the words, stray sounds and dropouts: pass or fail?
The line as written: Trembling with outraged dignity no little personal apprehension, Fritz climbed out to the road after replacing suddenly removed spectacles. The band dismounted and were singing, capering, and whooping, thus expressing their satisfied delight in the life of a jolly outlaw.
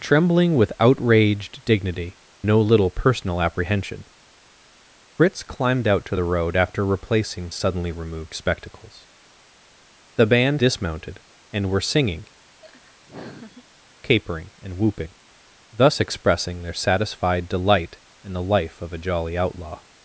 fail